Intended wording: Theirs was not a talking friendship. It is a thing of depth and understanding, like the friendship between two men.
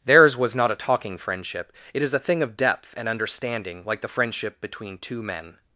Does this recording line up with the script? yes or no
yes